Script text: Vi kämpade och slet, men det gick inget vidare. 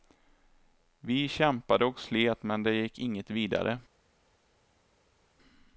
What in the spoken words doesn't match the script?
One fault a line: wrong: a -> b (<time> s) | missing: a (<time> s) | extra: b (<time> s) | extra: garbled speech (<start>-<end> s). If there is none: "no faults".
no faults